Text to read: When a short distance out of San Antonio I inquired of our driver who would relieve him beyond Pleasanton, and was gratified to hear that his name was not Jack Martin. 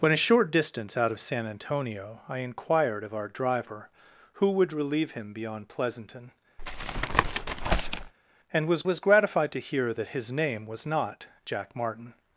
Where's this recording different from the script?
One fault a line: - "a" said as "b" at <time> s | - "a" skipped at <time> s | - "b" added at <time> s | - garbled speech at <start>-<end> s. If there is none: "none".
- "was" added at 8.8 s